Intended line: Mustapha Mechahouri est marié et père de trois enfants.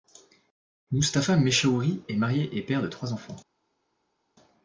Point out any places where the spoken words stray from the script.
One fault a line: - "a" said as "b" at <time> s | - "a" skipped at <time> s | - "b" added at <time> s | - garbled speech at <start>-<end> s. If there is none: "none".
none